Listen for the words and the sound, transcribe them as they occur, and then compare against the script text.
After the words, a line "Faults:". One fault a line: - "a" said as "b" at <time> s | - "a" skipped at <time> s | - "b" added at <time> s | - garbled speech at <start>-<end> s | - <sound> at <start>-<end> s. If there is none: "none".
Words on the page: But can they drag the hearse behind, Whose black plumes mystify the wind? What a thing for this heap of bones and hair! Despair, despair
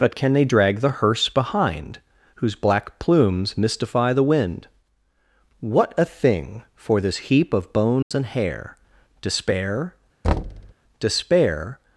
But can they drag the hearse behind, Whose black plumes mystify the wind? What a thing for this heap of bones and hair! Despair, despair
Faults:
- dropout at 8.0-8.1 s
- thud at 10.2-10.7 s